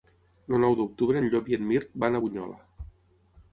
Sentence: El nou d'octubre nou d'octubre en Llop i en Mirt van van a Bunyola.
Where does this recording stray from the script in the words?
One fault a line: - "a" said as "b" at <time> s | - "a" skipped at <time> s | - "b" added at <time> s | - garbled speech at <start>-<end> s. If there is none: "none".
- "nou d'octubre" skipped at 1.2 s
- "van" skipped at 2.2 s